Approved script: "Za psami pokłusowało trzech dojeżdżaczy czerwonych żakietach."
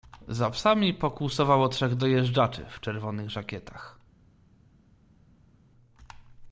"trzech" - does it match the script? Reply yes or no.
yes